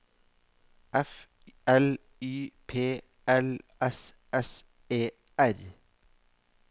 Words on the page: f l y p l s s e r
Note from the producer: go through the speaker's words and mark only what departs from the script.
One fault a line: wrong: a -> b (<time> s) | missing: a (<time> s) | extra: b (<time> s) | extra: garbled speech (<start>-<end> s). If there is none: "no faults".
no faults